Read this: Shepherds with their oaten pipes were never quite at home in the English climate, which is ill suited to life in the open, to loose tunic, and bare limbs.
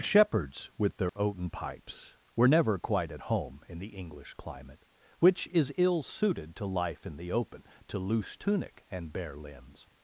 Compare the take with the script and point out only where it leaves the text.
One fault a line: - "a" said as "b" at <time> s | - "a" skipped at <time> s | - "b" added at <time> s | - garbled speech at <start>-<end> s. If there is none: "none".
none